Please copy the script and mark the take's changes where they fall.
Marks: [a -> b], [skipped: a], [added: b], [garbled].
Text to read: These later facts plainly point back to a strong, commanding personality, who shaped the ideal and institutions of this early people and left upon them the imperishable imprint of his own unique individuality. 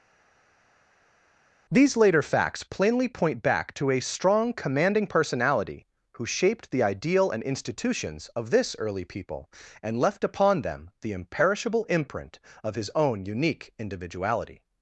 These later facts plainly point back to a strong, commanding personality, who shaped the ideal and institutions of this early people and left upon them the imperishable imprint of his own unique individuality.